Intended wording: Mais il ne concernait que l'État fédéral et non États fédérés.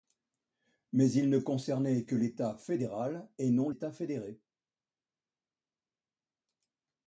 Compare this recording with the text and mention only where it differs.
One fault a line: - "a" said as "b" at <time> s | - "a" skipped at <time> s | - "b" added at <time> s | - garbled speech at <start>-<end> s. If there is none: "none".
none